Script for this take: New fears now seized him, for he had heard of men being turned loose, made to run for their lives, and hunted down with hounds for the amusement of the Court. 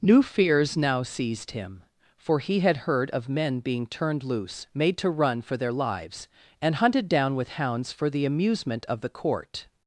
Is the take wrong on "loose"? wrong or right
right